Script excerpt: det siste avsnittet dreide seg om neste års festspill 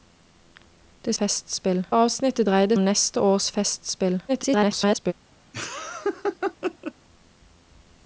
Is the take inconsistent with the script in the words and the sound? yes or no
yes